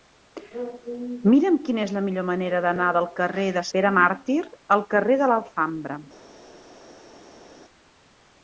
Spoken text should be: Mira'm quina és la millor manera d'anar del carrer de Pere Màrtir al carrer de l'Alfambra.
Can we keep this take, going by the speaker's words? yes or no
yes